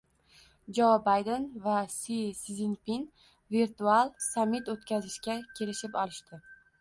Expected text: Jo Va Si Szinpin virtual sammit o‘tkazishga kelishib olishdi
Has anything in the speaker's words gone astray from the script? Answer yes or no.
yes